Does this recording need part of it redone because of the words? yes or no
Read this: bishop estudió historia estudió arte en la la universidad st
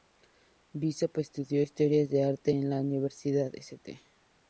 yes